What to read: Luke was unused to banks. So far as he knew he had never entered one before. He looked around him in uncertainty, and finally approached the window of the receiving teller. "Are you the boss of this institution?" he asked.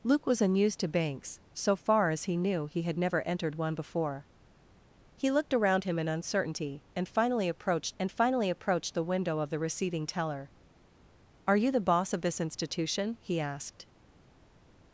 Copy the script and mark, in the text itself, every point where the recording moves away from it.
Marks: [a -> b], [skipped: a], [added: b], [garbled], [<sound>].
Luke was unused to banks. So far as he knew he had never entered one before. He looked around him in uncertainty, and finally approached [added: and finally approached] the window of the receiving teller. "Are you the boss of this institution?" he asked.